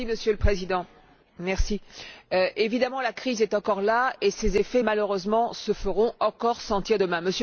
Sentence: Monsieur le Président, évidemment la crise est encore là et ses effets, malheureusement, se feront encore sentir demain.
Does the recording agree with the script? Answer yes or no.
yes